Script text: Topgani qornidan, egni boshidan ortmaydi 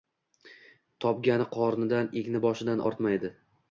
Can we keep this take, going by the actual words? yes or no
yes